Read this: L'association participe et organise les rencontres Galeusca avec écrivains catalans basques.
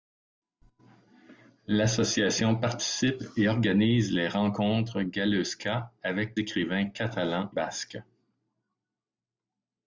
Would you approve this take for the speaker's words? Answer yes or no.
yes